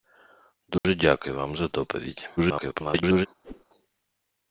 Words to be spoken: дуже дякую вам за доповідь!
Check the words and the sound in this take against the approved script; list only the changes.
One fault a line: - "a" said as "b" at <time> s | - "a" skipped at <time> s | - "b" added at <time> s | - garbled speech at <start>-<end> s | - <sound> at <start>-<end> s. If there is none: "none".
- dropout at 0.8-0.8 s
- garbled speech at 2.4-3.3 s
- whoosh at 3.4-3.7 s